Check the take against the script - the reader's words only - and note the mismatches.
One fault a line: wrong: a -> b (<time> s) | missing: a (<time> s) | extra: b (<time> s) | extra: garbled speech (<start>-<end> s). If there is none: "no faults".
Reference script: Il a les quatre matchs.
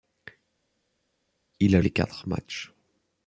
no faults